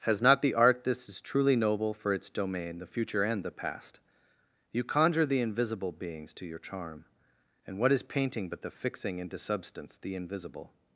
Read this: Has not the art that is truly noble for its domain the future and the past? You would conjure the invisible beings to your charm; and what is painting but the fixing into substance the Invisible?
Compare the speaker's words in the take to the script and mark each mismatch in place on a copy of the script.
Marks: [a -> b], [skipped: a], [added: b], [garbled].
Has not the art [that -> this] is truly noble for its domain the future and the past? You [skipped: would] conjure the invisible beings to your charm; and what is painting but the fixing into substance the Invisible?